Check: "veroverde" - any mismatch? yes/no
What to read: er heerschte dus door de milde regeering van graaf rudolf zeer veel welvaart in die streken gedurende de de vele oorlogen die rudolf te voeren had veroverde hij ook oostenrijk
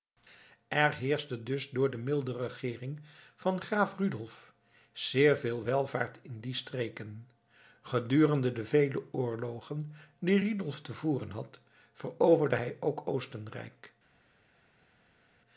no